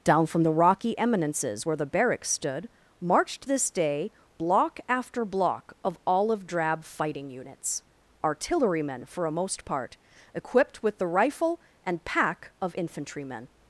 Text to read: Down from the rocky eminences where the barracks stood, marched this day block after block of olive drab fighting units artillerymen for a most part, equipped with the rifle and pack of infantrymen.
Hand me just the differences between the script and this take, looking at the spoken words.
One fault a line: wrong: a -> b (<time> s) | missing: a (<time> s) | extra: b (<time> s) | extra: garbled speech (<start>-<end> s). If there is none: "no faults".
no faults